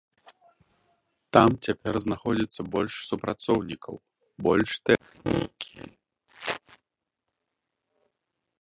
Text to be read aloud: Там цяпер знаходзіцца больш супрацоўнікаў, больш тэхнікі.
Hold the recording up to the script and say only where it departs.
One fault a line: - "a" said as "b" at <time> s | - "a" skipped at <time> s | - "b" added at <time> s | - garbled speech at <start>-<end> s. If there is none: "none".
none